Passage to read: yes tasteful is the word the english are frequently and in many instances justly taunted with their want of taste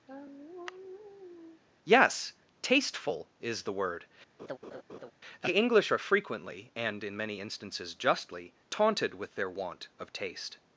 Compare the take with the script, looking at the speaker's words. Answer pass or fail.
pass